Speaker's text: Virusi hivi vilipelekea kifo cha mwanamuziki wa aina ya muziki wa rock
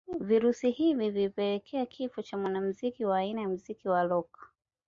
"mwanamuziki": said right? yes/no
yes